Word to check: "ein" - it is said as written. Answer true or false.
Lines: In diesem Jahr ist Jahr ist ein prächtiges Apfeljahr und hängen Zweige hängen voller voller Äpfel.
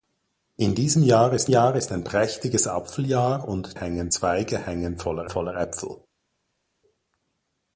true